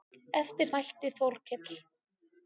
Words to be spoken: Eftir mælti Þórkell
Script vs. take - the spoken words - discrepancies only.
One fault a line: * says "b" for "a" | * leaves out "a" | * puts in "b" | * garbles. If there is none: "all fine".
all fine